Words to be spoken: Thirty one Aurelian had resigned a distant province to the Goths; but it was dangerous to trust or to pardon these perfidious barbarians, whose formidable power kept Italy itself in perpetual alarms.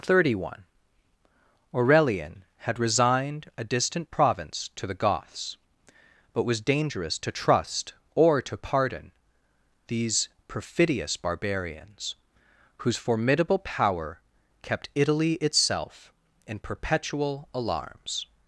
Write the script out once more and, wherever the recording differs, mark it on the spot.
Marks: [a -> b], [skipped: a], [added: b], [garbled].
Thirty one Aurelian had resigned a distant province to the Goths; but [skipped: it] was dangerous to trust or to pardon these perfidious barbarians, whose formidable power kept Italy itself in perpetual alarms.